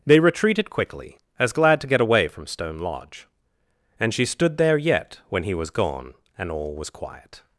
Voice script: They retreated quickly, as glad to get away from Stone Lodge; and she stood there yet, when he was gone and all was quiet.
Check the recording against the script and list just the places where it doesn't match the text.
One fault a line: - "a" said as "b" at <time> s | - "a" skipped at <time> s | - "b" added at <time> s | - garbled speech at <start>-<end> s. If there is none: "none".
none